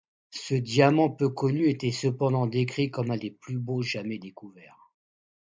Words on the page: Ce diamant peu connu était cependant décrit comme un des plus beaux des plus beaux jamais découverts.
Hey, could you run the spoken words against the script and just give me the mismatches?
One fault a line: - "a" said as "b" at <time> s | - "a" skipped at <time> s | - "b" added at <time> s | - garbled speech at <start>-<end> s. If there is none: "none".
- "des plus beaux" skipped at 3.8 s